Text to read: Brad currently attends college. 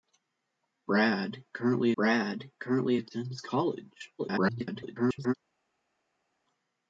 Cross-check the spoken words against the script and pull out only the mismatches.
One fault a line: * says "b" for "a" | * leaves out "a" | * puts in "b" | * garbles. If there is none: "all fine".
* puts in "brad currently"
* garbles